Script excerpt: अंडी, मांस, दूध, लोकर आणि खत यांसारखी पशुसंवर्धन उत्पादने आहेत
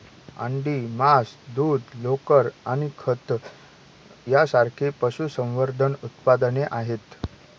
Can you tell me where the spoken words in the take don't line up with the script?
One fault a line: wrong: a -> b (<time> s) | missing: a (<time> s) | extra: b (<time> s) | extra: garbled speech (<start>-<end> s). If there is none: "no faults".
no faults